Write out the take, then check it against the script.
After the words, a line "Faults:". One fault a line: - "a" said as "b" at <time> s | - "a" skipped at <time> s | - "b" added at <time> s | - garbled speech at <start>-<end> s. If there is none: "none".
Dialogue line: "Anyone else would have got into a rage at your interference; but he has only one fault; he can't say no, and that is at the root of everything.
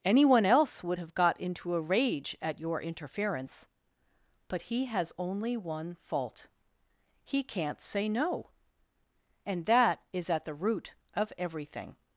"Anyone else would have got into a rage at your interference; but he has only one fault; he can't say no, and that is at the root of everything.
Faults:
none